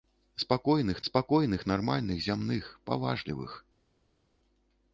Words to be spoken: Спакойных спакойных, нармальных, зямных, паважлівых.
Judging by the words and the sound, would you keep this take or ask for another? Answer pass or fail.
pass